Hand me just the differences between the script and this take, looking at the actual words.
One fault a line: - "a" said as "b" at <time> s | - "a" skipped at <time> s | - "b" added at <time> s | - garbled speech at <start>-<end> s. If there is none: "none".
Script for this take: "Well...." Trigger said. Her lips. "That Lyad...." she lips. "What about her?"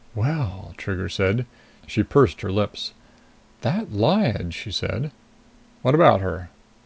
- "She pursed" added at 1.9 s
- "lips" said as "said" at 4.7 s